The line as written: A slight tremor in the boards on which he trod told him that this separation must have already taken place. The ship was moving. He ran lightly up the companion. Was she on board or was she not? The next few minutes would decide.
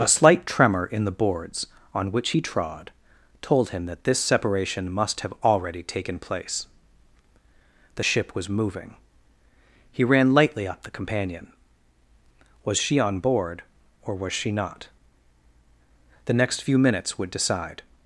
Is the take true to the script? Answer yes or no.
yes